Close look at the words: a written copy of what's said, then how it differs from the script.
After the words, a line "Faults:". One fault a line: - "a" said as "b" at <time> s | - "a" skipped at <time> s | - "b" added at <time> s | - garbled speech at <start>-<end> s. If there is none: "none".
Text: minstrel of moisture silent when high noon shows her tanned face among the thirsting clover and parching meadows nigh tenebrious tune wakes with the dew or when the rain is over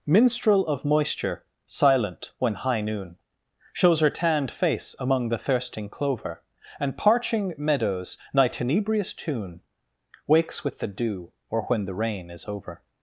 minstrel of moisture silent when high noon shows her tanned face among the thirsting clover and parching meadows nigh tenebrious tune wakes with the dew or when the rain is over
Faults:
none